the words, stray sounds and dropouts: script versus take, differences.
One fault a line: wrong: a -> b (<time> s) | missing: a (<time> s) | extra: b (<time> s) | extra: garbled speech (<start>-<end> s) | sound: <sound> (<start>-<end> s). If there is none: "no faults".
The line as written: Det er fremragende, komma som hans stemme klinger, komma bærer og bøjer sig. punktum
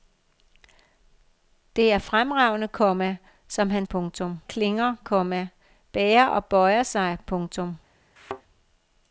wrong: stemme -> punktum (3.9 s)
sound: thud (8.2-8.4 s)